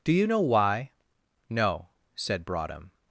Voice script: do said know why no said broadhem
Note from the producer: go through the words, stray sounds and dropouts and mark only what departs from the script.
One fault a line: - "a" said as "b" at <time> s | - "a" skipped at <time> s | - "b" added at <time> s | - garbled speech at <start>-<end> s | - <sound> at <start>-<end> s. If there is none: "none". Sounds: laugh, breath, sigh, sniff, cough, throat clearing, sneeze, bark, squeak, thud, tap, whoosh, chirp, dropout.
- "said" said as "you" at 0.1 s